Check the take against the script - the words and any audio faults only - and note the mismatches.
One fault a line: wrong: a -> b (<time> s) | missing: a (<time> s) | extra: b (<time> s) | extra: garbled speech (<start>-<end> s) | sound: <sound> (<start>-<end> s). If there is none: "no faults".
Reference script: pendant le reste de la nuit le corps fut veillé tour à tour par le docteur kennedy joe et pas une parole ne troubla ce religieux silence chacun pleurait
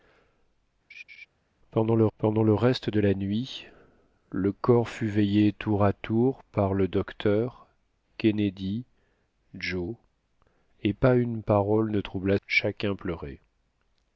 sound: laugh (0.9-1.3 s)
extra: pendant le (2.2 s)
missing: ce religieux silence (12.4 s)